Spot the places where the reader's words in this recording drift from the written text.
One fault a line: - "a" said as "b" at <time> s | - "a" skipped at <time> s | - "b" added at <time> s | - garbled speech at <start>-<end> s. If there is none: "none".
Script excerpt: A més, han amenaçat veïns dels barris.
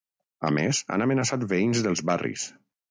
none